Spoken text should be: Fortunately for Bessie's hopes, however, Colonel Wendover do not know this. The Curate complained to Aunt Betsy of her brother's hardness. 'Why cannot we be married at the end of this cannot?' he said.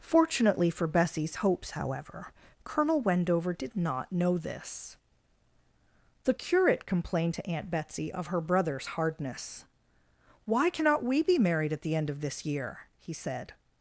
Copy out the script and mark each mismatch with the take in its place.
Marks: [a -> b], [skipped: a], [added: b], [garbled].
Fortunately for Bessie's hopes, however, Colonel Wendover [do -> did] not know this. The Curate complained to Aunt Betsy of her brother's hardness. 'Why cannot we be married at the end of this [cannot?' -> year] he said.